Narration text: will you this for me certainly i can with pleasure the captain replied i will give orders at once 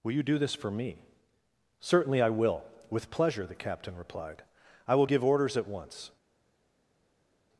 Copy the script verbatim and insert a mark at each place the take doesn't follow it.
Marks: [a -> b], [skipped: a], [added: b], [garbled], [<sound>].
will you [added: do] this for me certainly i [can -> will] with pleasure the captain replied i will give orders at once